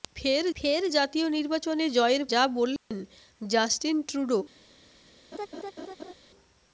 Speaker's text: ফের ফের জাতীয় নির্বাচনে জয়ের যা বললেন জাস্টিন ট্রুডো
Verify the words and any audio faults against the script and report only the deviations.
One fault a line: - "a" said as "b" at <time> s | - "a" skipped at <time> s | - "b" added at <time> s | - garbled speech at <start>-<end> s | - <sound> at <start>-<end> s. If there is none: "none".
- dropout at 2.8-2.9 s
- laugh at 5.3-6.1 s